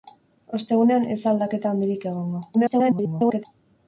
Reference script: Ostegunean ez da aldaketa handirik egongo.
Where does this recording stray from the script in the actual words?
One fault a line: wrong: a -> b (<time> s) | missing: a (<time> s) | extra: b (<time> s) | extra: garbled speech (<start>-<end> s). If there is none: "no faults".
extra: garbled speech (2.5-3.5 s)